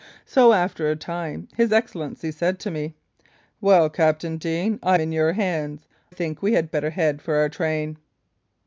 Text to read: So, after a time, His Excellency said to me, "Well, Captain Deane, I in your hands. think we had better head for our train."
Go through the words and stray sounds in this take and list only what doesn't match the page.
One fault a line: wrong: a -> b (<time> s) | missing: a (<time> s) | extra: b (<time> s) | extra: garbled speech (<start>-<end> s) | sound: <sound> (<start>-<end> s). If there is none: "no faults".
no faults